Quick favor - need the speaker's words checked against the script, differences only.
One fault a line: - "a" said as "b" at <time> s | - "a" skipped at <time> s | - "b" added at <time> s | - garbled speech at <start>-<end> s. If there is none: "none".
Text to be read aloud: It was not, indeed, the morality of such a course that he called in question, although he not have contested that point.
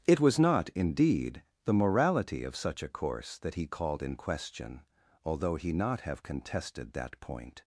none